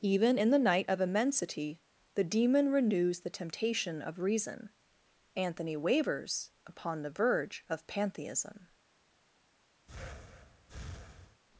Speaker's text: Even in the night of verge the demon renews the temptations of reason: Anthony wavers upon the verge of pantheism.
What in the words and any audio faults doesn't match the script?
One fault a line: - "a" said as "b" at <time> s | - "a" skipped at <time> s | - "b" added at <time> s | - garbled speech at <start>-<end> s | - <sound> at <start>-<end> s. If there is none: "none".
- "verge" said as "immensity" at 1.0 s
- "temptations" said as "temptation" at 3.3 s
- breath at 9.9-11.4 s